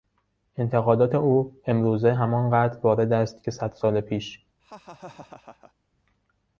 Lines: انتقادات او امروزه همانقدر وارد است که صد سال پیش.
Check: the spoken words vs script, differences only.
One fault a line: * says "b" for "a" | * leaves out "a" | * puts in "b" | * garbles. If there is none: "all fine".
all fine